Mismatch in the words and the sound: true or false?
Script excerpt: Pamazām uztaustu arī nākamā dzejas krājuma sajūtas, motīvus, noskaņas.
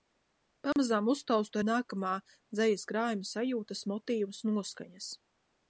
true